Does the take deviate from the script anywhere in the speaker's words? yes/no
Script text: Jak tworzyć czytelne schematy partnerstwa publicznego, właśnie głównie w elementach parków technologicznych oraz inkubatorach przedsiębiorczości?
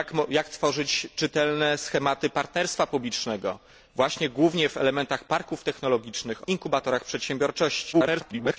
yes